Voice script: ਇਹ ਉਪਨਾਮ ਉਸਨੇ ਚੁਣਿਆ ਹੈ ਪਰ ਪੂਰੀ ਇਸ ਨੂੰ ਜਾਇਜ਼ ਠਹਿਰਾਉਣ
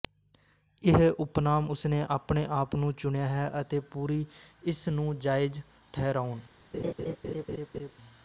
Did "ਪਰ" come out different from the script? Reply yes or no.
yes